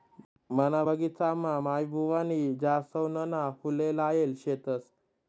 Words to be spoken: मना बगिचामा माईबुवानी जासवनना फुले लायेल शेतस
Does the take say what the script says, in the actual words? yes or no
yes